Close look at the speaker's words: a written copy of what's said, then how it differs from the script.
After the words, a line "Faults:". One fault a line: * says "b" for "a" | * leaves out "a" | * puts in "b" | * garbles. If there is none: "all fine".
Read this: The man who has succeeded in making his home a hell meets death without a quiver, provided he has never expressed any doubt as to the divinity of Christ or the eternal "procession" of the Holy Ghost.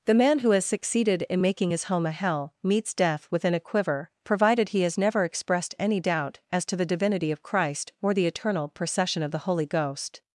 The man who has succeeded in making his home a hell meets death within a quiver, provided he has never expressed any doubt as to the divinity of Christ or the eternal "procession" of the Holy Ghost.
Faults:
* says "within" for "without"